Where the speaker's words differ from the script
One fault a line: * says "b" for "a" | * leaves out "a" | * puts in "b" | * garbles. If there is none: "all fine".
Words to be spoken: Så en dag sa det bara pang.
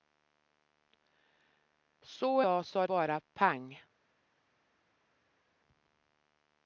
* leaves out "en"
* leaves out "det"